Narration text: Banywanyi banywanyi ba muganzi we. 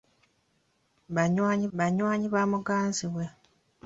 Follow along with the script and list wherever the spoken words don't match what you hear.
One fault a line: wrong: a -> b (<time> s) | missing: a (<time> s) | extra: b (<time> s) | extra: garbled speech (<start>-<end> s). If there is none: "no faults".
no faults